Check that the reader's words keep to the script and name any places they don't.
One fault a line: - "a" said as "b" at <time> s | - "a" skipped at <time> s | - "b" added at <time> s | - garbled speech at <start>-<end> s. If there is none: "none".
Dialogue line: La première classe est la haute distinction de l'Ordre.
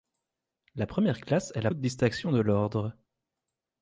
none